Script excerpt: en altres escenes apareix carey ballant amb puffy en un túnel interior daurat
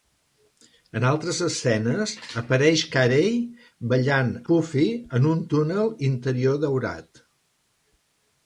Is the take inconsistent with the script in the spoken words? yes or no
yes